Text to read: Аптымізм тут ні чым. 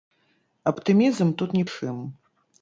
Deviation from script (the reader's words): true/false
false